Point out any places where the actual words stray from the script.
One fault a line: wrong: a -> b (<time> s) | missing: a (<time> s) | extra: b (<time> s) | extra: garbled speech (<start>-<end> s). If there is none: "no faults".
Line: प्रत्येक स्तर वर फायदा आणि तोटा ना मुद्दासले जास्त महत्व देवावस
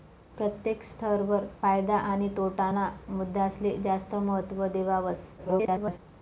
extra: garbled speech (5.4-6.0 s)